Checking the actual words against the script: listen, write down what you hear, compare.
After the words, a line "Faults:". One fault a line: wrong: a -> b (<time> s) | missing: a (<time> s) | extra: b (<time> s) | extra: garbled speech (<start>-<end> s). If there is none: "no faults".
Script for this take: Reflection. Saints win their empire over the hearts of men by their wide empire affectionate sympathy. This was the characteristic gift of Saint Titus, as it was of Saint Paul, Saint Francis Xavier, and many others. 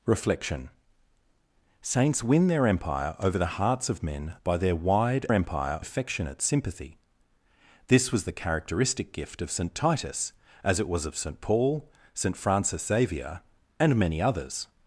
Reflection. Saints win their empire over the hearts of men by their wide empire affectionate sympathy. This was the characteristic gift of Saint Titus, as it was of Saint Paul, Saint Francis Xavier, and many others.
Faults:
no faults